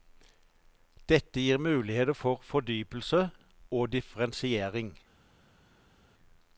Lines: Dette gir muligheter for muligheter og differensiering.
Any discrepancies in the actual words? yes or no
yes